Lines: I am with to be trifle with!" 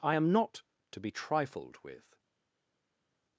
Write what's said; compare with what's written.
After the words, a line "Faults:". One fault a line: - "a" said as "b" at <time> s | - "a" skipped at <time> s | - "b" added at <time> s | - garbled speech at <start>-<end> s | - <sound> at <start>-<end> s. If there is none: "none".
I am not to be trifled with!"
Faults:
- "with" said as "not" at 0.3 s
- "trifle" said as "trifled" at 1.1 s